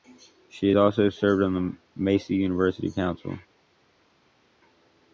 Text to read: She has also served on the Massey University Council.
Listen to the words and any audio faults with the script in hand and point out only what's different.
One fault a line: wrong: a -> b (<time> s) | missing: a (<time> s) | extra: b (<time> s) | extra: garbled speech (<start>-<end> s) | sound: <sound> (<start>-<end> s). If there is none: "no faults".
missing: has (0.7 s)